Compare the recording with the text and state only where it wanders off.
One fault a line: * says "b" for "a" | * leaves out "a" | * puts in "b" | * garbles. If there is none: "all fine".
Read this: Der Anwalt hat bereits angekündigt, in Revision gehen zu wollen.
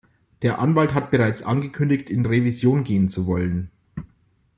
all fine